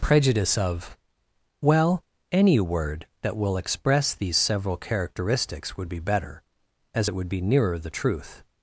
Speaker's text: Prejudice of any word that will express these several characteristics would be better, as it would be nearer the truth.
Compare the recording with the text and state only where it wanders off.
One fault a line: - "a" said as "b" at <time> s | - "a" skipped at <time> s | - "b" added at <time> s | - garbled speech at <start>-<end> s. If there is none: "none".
- "well" added at 1.6 s